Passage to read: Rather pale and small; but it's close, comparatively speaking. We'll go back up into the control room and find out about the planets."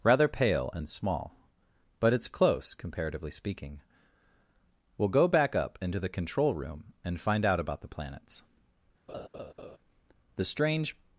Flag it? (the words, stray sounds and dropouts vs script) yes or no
yes